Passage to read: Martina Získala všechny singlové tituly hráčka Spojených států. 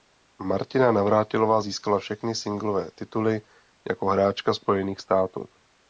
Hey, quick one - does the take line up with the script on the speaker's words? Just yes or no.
no